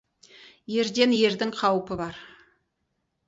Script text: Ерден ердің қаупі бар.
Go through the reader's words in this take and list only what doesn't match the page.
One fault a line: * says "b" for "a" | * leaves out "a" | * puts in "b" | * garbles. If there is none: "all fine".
all fine